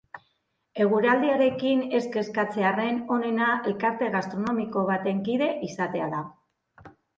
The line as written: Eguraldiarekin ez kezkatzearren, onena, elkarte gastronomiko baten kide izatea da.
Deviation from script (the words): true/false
false